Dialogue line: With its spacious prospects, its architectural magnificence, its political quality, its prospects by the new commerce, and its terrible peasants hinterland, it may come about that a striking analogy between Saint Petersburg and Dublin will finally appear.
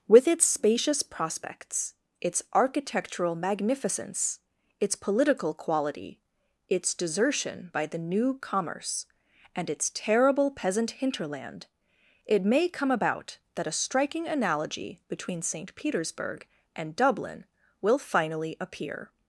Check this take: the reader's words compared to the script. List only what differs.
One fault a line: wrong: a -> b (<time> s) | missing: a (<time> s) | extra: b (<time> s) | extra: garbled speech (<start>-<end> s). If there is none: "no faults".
wrong: prospects -> desertion (6.9 s)
wrong: peasants -> peasant (10.5 s)